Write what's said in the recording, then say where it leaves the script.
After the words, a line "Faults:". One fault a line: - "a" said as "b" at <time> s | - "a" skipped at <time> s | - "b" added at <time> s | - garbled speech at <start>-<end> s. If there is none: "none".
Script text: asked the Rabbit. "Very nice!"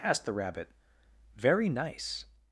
asked the Rabbit. "Very nice!"
Faults:
none